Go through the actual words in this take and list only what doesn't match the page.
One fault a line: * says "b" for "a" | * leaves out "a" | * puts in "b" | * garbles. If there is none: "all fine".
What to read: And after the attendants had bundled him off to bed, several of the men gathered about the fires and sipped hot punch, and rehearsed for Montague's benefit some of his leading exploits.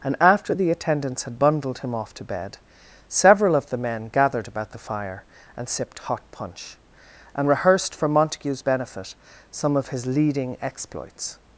* says "fire" for "fires"